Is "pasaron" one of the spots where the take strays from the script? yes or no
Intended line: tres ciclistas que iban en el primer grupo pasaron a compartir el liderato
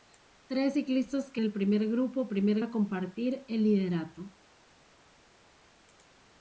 yes